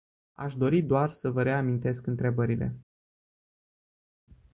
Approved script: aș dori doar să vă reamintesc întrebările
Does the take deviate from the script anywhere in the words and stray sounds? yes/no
no